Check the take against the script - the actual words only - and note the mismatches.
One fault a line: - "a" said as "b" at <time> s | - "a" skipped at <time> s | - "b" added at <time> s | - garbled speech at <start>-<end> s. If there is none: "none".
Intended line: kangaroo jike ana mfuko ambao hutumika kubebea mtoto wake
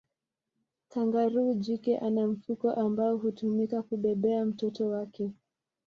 none